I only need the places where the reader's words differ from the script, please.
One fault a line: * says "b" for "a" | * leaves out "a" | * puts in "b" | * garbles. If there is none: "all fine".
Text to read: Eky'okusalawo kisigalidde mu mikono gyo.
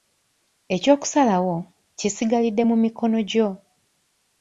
all fine